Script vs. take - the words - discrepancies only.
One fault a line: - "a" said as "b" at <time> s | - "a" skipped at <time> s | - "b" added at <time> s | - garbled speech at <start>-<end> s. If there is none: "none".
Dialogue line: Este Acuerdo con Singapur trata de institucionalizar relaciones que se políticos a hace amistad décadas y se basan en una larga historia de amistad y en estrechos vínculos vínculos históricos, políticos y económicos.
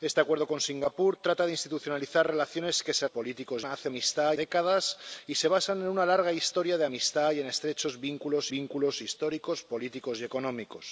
none